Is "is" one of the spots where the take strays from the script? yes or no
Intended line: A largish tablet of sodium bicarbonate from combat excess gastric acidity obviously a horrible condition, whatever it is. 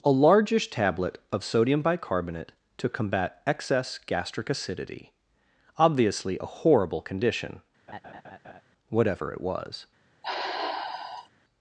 yes